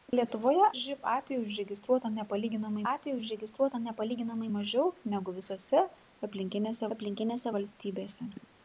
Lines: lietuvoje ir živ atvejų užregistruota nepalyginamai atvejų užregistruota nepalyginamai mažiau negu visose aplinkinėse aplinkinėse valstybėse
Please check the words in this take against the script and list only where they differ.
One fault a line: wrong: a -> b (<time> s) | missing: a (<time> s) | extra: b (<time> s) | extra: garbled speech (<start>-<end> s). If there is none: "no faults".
no faults